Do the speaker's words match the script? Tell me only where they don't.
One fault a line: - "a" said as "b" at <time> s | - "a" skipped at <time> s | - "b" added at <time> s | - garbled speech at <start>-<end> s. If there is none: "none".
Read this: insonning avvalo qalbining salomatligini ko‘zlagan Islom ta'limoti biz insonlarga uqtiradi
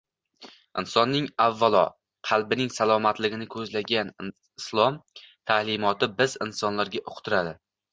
none